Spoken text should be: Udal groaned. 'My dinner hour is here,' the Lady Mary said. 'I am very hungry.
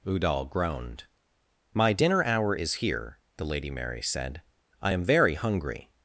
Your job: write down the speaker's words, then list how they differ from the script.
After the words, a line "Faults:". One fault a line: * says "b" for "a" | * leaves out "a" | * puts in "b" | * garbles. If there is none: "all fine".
Udal groaned. 'My dinner hour is here,' the Lady Mary said. 'I am very hungry.
Faults:
all fine